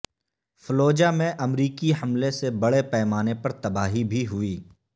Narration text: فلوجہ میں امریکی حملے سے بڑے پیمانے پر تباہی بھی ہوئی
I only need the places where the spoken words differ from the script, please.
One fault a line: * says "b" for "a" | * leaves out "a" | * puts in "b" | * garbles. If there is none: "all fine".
all fine